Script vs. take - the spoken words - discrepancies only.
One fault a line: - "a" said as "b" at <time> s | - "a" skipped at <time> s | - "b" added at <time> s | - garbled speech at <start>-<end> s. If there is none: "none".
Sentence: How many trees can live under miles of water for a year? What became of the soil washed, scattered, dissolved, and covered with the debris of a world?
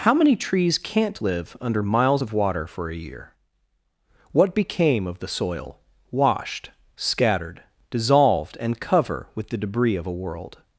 - "can" said as "can't" at 0.8 s
- "covered" said as "cover" at 8.8 s